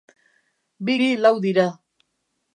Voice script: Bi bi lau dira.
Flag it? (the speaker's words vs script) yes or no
no